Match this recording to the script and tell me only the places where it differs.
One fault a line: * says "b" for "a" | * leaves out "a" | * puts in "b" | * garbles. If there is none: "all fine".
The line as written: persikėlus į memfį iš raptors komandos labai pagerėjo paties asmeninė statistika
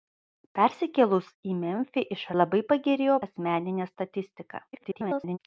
* leaves out "raptors komandos"
* leaves out "paties"
* garbles